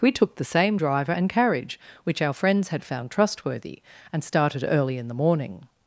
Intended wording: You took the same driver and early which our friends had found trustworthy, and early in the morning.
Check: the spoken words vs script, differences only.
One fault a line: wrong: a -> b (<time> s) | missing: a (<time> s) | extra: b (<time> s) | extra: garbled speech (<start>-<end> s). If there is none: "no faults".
wrong: You -> We (0.0 s)
wrong: early -> carriage (1.3 s)
extra: started (4.2 s)